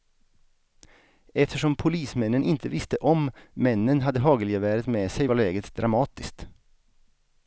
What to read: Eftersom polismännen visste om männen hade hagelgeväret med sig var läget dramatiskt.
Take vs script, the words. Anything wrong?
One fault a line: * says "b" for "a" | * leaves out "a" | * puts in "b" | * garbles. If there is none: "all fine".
* puts in "inte"